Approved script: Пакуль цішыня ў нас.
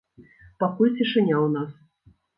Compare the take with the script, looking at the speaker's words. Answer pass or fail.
pass